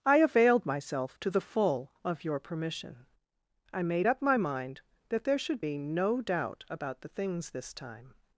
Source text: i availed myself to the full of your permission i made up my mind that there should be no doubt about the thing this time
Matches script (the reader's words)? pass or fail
fail